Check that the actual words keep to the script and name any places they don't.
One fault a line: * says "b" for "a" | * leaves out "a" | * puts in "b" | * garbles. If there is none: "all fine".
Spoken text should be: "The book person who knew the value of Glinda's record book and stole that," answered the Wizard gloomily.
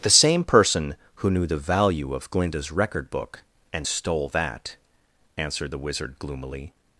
* says "same" for "book"